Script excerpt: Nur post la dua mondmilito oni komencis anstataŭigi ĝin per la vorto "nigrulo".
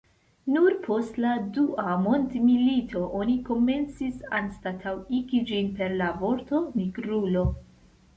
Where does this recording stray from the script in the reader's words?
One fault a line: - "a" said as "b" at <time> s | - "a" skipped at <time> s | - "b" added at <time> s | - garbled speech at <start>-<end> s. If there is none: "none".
none